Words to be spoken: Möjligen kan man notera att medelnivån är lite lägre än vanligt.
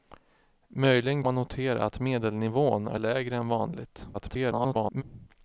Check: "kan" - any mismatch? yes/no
yes